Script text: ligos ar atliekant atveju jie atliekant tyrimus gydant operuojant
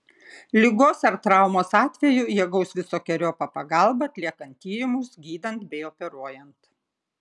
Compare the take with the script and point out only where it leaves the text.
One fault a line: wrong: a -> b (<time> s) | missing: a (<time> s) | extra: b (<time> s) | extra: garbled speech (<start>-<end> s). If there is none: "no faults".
wrong: atliekant -> traumos (1.2 s)
extra: gaus visokeriopą pagalbą (2.5 s)
extra: bei (5.7 s)